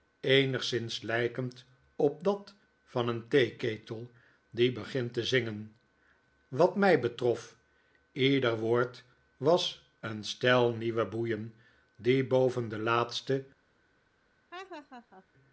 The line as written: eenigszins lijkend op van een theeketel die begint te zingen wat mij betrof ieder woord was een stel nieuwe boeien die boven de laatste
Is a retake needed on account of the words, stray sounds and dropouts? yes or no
yes